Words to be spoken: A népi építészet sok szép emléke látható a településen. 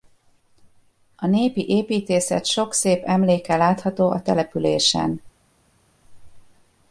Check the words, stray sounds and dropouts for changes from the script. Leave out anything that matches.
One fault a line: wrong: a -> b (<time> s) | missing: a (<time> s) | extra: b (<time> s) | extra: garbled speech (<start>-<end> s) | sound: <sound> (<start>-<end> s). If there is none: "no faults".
no faults